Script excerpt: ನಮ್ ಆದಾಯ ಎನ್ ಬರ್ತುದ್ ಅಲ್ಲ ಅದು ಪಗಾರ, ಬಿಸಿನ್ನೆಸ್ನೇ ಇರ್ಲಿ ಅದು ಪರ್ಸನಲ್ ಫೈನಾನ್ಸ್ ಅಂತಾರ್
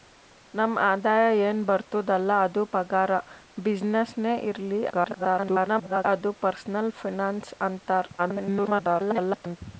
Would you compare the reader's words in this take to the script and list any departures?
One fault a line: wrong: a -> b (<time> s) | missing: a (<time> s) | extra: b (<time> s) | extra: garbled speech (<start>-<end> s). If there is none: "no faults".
extra: garbled speech (4.9-6.0 s)
extra: garbled speech (8.2-9.6 s)